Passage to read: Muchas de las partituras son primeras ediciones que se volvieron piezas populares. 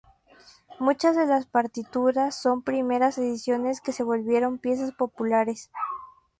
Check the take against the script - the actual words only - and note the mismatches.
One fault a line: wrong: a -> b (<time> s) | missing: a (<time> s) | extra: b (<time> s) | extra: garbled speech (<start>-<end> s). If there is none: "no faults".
no faults